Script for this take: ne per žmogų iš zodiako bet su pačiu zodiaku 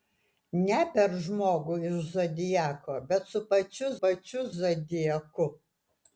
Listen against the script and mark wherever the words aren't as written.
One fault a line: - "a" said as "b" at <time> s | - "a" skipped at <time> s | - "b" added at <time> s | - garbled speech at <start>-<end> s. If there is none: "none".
- "pačiu" added at 4.0 s